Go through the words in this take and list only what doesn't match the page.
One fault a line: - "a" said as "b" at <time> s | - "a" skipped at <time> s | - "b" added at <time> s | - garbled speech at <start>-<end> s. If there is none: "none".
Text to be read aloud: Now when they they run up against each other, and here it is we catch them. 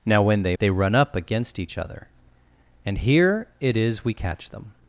none